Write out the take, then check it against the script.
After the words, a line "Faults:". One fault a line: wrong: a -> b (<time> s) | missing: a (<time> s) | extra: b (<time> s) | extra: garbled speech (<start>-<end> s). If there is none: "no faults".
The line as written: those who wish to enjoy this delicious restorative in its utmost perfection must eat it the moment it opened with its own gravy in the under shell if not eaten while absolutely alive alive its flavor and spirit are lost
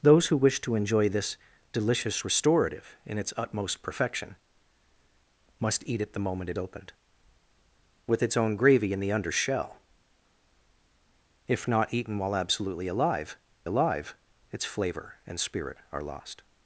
those who wish to enjoy this delicious restorative in its utmost perfection must eat it the moment it opened with its own gravy in the under shell if not eaten while absolutely alive alive its flavor and spirit are lost
Faults:
no faults